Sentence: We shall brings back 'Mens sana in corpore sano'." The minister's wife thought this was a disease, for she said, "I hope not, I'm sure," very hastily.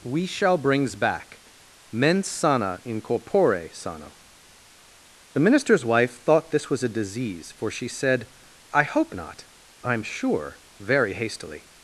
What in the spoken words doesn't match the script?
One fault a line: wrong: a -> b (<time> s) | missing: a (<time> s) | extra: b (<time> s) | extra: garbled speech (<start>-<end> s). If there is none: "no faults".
no faults